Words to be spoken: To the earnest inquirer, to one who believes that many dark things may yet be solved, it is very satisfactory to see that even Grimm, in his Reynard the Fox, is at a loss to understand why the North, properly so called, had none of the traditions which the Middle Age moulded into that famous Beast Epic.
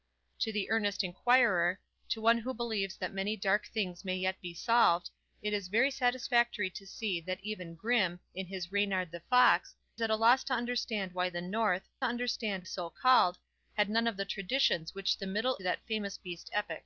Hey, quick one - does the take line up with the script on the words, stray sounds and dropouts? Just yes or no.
no